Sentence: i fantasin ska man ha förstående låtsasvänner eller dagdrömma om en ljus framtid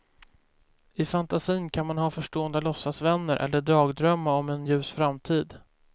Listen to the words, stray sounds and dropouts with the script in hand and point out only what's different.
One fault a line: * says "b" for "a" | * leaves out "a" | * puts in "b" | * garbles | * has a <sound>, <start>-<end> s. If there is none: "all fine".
* says "kan" for "ska"